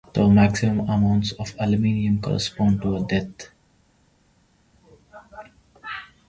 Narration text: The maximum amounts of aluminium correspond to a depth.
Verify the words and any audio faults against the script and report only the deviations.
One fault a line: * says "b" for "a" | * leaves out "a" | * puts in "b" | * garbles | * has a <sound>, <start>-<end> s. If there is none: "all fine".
all fine